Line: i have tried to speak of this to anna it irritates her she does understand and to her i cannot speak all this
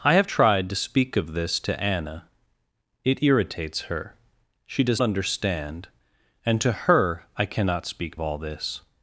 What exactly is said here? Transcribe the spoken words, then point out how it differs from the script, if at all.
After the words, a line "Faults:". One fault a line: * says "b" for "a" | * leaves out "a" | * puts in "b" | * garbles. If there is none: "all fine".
i have tried to speak of this to anna it irritates her she does understand and to her i cannot speak all this
Faults:
all fine